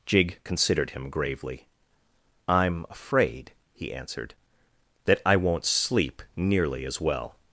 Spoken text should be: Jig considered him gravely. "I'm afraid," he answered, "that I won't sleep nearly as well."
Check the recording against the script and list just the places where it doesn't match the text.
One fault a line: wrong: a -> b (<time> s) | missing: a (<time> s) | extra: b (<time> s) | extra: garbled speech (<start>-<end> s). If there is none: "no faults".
no faults